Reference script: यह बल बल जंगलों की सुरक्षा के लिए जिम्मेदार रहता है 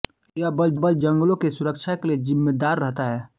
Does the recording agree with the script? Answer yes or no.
yes